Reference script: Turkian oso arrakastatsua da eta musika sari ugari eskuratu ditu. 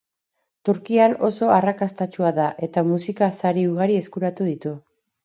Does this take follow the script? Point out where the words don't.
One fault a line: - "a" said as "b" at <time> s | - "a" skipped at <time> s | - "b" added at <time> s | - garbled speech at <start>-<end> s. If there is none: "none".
none